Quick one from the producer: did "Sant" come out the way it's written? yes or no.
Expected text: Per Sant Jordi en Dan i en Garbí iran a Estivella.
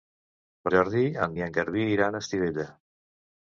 no